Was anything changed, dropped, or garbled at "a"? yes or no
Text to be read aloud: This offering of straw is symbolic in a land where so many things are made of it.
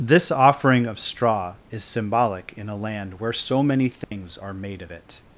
no